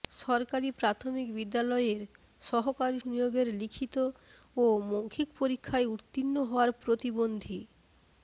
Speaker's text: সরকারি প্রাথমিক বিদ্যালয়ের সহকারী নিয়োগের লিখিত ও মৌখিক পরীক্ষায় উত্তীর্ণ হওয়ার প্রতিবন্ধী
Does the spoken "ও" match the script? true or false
true